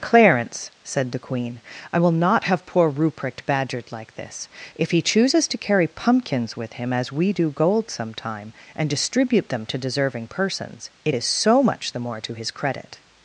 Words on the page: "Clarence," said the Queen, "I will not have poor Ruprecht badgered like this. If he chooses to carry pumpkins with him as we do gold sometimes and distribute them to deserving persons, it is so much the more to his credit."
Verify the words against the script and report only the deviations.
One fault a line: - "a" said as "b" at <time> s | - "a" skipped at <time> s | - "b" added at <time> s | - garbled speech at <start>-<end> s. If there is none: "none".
- "sometimes" said as "sometime" at 7.9 s